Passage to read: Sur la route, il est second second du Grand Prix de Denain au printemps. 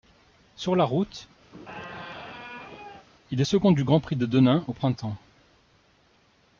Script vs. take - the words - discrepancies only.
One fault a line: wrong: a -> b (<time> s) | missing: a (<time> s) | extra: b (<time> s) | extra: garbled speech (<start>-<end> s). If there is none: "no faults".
missing: second (3.7 s)